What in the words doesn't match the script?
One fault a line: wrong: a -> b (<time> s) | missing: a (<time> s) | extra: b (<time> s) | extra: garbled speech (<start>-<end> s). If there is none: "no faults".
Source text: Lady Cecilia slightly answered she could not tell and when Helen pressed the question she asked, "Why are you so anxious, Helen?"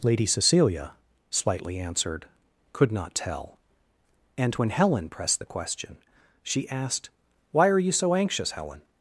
missing: she (2.2 s)